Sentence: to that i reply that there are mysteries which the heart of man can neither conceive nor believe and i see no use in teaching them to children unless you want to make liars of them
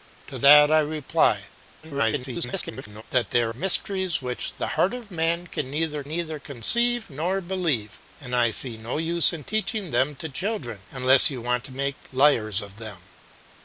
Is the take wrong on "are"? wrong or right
wrong